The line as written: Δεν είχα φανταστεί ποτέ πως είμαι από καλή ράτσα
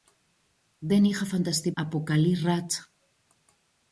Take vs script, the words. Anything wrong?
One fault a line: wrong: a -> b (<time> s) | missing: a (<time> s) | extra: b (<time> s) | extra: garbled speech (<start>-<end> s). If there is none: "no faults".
missing: ποτέ πως είμαι (1.7 s)